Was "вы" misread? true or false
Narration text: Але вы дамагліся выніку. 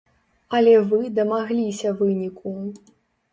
false